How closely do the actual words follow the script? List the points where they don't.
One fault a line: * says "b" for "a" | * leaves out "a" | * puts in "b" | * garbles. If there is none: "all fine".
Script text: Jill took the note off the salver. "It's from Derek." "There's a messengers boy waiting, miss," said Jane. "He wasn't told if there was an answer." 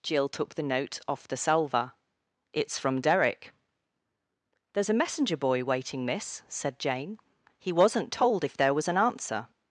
* says "messenger" for "messengers"